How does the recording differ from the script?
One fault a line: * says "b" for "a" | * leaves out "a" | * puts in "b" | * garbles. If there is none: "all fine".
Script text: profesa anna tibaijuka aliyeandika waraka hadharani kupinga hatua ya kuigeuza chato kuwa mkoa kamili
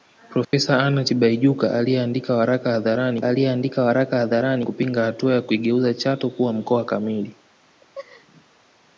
* puts in "aliyeandika waraka hadharani"